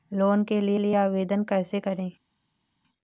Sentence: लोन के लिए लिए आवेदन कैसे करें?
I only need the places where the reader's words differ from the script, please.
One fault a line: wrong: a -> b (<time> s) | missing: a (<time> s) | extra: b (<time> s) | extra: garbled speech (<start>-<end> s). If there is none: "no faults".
no faults